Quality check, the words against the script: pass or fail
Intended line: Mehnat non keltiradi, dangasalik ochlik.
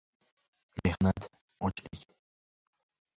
fail